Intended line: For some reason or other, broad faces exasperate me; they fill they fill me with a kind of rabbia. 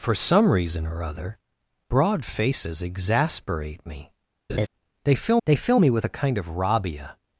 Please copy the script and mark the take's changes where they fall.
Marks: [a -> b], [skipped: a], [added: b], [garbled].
For some reason or other, broad faces exasperate me; they fill they fill me with a kind of rabbia.